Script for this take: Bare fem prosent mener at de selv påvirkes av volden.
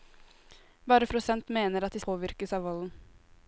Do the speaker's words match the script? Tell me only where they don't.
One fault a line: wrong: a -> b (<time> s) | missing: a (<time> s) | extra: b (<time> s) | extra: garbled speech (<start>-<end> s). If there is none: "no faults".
missing: fem (1.1 s)
missing: selv (2.0 s)